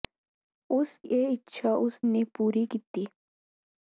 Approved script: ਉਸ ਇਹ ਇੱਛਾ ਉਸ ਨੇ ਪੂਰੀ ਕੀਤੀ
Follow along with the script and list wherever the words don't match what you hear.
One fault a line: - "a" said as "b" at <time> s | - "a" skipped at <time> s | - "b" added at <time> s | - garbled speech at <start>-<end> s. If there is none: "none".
none